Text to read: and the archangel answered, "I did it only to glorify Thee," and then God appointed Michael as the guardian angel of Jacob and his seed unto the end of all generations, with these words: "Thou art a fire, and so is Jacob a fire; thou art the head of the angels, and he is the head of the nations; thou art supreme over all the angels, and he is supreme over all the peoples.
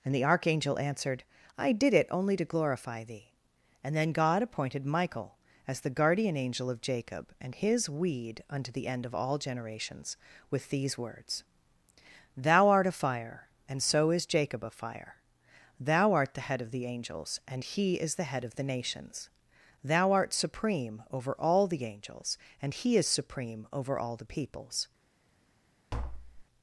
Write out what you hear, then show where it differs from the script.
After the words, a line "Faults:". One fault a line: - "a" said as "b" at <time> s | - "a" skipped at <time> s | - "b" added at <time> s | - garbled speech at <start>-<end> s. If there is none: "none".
and the archangel answered, "I did it only to glorify Thee," and then God appointed Michael as the guardian angel of Jacob and his weed unto the end of all generations, with these words: "Thou art a fire, and so is Jacob a fire; thou art the head of the angels, and he is the head of the nations; thou art supreme over all the angels, and he is supreme over all the peoples.
Faults:
- "seed" said as "weed" at 7.9 s